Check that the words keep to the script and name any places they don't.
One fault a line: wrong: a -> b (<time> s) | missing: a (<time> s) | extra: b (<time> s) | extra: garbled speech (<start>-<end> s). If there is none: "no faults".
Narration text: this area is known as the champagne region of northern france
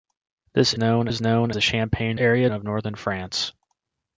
wrong: area -> known (0.8 s)
missing: as (1.5 s)
wrong: region -> area (2.1 s)